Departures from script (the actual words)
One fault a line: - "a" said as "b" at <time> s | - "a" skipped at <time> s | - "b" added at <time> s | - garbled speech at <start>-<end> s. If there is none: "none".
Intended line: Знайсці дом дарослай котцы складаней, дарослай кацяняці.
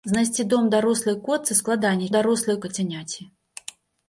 none